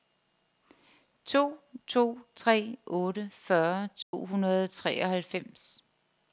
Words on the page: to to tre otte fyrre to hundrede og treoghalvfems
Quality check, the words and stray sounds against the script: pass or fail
fail